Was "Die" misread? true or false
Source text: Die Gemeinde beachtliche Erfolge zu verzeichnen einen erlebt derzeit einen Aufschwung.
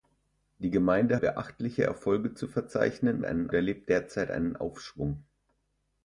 false